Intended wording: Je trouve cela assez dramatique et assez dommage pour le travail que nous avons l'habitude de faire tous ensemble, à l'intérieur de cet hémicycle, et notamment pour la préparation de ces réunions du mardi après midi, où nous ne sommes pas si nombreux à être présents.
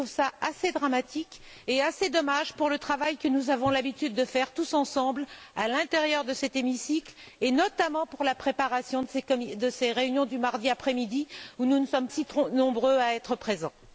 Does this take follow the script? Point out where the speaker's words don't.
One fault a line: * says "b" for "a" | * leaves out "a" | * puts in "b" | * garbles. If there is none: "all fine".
* leaves out "pas"